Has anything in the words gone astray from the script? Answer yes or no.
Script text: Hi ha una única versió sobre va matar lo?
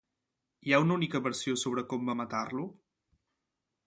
yes